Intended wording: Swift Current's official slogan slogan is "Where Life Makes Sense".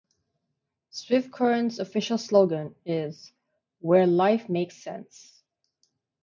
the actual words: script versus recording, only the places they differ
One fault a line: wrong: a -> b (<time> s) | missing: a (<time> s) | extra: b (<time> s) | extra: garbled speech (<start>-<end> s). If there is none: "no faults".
missing: slogan (2.7 s)